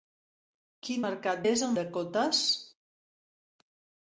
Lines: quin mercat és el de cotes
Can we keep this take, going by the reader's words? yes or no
yes